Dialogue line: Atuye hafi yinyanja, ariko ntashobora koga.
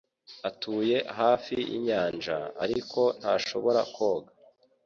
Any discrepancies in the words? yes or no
no